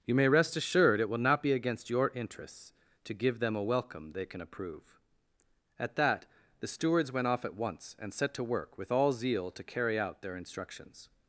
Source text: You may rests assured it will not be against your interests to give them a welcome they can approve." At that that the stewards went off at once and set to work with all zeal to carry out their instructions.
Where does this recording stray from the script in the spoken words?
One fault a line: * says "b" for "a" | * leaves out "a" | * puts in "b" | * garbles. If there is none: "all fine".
* says "rest" for "rests"
* leaves out "that"